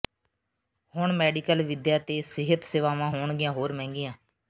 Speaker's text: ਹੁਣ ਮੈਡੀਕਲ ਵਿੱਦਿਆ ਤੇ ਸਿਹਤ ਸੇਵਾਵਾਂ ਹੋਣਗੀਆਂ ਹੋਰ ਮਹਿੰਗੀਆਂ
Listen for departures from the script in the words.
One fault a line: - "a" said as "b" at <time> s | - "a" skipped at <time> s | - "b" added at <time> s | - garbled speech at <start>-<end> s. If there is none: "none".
none